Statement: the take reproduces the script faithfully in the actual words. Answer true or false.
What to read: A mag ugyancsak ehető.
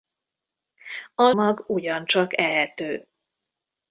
true